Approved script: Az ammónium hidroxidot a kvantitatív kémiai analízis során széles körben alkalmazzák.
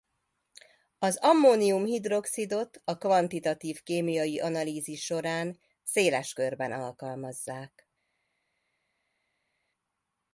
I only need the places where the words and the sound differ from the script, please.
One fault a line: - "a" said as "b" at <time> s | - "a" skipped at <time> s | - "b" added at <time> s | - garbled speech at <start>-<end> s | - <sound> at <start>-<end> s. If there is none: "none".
none